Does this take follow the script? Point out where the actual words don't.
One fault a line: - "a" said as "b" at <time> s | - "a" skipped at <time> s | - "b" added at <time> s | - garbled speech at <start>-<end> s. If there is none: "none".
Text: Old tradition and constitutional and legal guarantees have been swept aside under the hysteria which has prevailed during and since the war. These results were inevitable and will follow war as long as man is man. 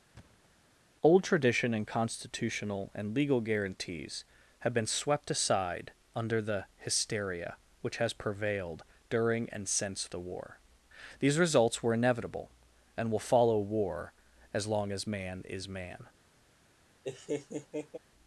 none